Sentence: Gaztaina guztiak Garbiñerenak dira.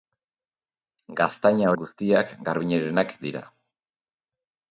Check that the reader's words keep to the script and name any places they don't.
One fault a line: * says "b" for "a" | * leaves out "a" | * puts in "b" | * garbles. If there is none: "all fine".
all fine